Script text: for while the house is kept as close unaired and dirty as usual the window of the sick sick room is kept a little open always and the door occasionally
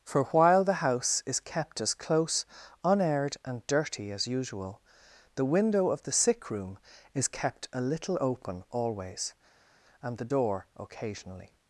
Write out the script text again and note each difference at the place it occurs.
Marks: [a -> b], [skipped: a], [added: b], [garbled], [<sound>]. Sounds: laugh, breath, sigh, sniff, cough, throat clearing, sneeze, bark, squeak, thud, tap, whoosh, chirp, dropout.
for while the house is kept as close unaired and dirty as usual the window of the sick [skipped: sick] room is kept a little open always and the door occasionally